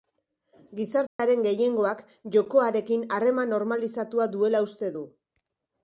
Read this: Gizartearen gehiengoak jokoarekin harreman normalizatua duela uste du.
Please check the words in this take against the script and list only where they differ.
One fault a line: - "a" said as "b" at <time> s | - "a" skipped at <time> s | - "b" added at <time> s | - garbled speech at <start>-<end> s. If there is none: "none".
none